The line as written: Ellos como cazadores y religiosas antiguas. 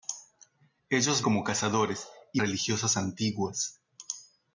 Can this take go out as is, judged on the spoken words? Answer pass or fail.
pass